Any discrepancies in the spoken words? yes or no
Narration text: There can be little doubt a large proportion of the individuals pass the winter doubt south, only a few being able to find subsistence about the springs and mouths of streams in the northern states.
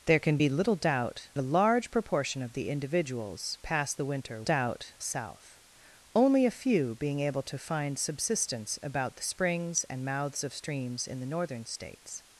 no